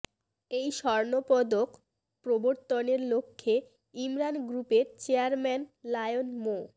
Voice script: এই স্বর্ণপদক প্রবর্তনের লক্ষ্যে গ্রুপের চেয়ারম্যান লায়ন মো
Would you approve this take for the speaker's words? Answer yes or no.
no